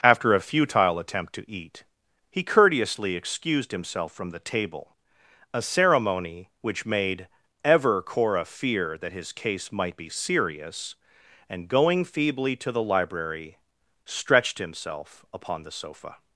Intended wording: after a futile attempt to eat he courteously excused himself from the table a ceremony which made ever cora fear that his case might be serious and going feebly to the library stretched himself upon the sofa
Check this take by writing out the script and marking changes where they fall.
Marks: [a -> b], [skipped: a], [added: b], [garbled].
after a futile attempt to eat he courteously excused himself from the table a ceremony which made ever cora fear that his case might be serious and going feebly to the library stretched himself upon the sofa